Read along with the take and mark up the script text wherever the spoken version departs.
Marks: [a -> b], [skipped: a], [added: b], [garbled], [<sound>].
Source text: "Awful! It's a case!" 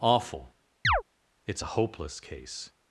"Awful! [chirp] It's a [added: hopeless] case!"